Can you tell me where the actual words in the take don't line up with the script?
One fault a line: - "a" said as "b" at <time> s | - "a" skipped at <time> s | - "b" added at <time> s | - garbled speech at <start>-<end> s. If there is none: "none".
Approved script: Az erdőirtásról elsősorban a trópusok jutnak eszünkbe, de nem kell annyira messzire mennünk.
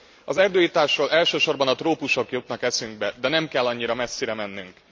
none